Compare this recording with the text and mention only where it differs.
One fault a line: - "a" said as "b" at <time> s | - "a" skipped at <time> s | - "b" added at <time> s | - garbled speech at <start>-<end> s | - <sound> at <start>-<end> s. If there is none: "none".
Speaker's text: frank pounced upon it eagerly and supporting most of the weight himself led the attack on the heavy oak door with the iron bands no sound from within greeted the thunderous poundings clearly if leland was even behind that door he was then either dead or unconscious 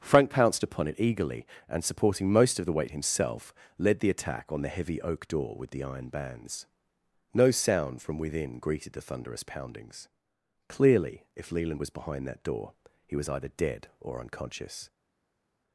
- "even" skipped at 11.9 s
- "then" skipped at 13.3 s